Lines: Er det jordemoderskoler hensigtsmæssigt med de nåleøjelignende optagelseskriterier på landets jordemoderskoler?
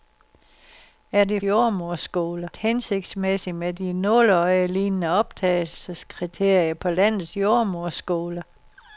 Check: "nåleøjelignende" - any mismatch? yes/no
no